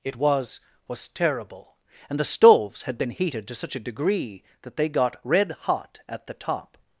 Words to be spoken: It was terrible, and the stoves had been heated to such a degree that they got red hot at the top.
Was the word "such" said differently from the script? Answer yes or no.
no